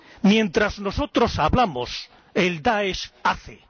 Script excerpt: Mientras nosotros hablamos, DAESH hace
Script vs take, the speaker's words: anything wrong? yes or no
yes